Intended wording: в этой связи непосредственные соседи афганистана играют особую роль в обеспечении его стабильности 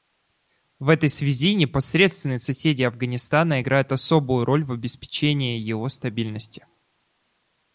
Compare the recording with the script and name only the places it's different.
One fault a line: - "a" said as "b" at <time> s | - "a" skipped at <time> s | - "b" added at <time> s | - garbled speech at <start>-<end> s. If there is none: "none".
none